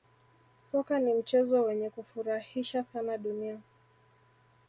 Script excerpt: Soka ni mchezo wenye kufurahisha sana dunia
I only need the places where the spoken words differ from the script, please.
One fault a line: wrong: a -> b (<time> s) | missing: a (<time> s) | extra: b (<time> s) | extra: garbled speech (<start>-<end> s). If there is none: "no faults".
no faults